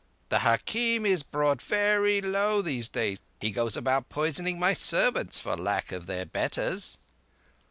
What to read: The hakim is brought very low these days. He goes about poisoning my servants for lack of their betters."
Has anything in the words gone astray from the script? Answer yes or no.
no